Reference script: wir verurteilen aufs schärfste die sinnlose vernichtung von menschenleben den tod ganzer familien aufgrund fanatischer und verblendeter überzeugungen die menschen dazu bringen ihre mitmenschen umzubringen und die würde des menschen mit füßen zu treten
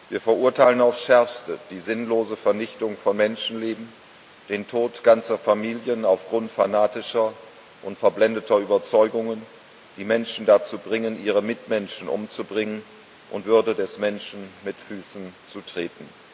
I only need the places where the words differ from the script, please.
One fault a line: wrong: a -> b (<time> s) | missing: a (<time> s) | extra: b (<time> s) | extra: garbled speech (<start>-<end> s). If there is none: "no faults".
missing: die (13.4 s)